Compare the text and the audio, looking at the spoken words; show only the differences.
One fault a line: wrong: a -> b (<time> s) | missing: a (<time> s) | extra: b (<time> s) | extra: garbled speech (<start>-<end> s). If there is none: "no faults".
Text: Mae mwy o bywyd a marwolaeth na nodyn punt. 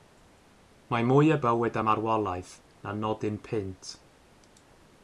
no faults